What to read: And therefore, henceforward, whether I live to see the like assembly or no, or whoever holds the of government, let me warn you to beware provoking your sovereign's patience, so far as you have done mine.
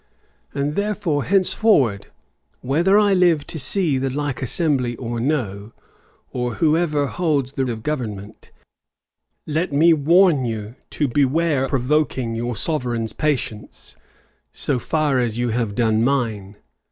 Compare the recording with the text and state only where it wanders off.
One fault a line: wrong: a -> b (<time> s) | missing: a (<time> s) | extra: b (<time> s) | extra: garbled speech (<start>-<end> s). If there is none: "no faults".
no faults